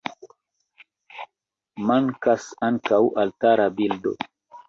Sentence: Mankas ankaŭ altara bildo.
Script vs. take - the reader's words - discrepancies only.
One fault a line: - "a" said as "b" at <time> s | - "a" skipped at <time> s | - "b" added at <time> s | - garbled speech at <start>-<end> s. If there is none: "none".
none